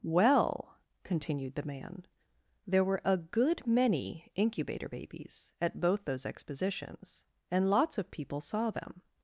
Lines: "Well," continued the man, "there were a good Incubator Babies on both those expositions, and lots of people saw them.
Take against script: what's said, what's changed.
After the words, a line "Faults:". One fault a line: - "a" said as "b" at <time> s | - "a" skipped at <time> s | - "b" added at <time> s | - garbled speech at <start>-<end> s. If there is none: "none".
"Well," continued the man, "there were a good many Incubator Babies at both those expositions, and lots of people saw them.
Faults:
- "many" added at 3.7 s
- "on" said as "at" at 5.6 s